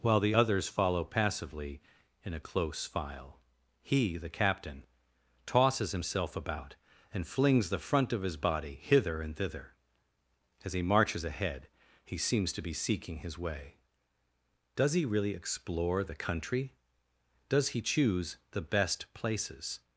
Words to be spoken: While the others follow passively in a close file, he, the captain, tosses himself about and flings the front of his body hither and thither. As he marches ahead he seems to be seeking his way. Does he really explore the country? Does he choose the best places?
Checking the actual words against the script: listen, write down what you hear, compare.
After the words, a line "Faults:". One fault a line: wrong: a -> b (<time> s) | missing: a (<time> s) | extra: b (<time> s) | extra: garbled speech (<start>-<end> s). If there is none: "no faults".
While the others follow passively in a close file, he, the captain, tosses himself about and flings the front of his body hither and thither. As he marches ahead he seems to be seeking his way. Does he really explore the country? Does he choose the best places?
Faults:
no faults